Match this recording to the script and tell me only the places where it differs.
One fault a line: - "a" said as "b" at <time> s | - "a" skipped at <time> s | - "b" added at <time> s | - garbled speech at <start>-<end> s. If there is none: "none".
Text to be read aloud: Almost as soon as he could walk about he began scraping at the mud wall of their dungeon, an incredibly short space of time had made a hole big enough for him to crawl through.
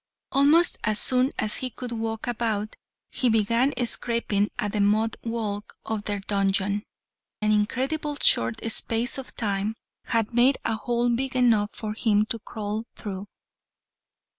none